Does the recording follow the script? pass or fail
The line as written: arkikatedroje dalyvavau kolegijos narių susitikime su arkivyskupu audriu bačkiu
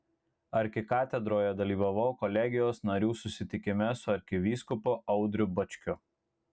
pass